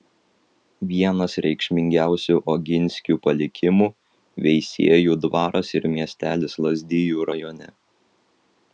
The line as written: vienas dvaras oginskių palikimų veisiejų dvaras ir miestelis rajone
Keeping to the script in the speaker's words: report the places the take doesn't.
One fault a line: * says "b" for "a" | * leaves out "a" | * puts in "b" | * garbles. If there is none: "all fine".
* says "reikšmingiausių" for "dvaras"
* puts in "lazdijų"